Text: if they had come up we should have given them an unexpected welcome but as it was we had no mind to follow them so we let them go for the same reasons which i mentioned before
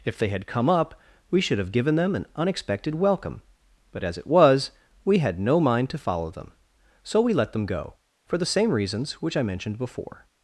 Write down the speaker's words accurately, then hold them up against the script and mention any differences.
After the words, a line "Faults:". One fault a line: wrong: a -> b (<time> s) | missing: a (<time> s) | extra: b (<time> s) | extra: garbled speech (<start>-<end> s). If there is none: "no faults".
if they had come up we should have given them an unexpected welcome but as it was we had no mind to follow them so we let them go for the same reasons which i mentioned before
Faults:
no faults